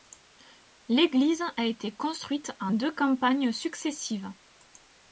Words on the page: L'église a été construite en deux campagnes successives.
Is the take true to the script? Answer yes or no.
yes